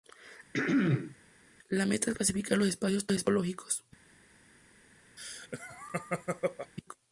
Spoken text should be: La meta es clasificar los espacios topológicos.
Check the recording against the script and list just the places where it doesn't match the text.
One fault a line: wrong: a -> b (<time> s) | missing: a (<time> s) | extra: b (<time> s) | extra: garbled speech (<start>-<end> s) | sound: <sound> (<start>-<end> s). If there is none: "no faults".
sound: throat clearing (0.5-1.2 s)
sound: laugh (5.2-6.7 s)